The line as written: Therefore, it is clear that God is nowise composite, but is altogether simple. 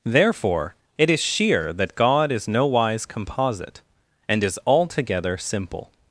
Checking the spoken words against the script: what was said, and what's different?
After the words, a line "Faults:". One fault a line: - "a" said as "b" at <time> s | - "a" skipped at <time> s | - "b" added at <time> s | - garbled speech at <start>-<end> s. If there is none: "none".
Therefore, it is sheer that God is nowise composite, and is altogether simple.
Faults:
- "clear" said as "sheer" at 1.2 s
- "but" said as "and" at 4.3 s